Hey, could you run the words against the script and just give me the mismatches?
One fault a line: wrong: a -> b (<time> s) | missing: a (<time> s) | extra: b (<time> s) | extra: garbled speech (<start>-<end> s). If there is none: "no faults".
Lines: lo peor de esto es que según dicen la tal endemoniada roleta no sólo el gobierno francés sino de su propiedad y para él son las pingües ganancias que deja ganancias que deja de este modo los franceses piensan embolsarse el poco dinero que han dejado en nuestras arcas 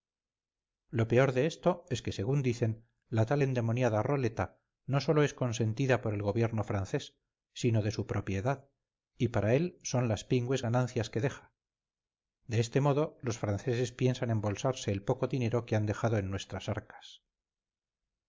extra: es consentida por (5.2 s)
missing: ganancias que deja (11.5 s)